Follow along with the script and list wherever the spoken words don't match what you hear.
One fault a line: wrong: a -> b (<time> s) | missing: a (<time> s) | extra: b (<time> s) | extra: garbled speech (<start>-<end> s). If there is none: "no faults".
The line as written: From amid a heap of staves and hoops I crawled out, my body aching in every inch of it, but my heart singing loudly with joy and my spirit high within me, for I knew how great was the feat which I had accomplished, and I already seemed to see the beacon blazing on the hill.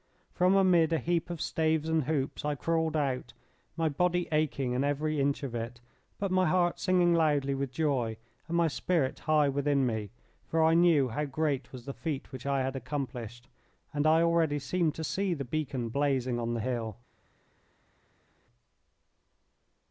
no faults